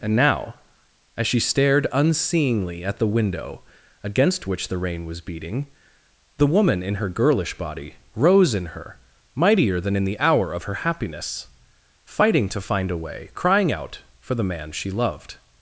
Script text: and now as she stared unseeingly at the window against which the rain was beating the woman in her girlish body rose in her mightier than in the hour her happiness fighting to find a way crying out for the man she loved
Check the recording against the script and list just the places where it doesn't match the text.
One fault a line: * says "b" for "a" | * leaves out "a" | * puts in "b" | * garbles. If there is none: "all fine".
* puts in "of"